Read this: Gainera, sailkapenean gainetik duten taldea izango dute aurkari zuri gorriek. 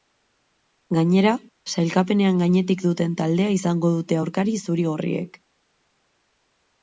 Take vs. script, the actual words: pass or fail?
pass